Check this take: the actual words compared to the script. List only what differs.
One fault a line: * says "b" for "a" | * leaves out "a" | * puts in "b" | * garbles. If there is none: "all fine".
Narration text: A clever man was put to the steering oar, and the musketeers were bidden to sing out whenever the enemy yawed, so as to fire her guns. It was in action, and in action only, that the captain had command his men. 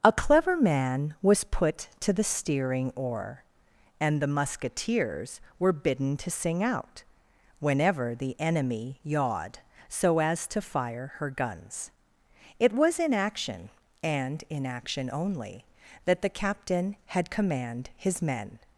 all fine